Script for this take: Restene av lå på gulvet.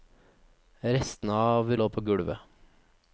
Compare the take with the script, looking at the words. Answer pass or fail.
pass